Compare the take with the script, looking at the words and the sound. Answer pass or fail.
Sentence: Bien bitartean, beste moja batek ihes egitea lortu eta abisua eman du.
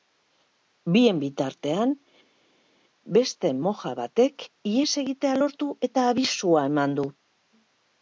pass